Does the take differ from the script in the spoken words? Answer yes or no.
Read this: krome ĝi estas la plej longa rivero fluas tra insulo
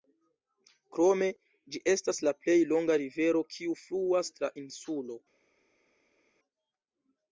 yes